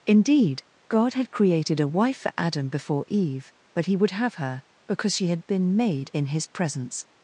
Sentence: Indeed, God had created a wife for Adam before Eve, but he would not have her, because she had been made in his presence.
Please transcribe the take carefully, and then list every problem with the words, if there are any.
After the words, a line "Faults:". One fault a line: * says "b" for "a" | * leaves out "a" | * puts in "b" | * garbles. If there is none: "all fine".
Indeed, God had created a wife for Adam before Eve, but he would have her, because she had been made in his presence.
Faults:
* leaves out "not"